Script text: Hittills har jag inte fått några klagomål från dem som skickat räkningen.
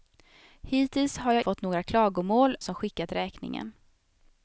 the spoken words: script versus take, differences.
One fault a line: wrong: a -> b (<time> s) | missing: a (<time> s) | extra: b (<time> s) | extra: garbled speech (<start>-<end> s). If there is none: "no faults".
missing: inte (1.4 s)
missing: från dem (2.6 s)